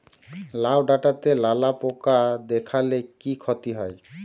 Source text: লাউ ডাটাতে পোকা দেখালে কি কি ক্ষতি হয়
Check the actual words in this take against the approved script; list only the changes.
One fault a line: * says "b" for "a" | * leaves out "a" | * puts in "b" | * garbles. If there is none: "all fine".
* puts in "লালা"
* leaves out "কি"